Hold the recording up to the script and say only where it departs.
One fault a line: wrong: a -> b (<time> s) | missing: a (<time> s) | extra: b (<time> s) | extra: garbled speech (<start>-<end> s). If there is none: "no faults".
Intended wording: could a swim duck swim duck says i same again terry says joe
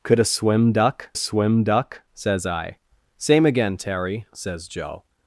no faults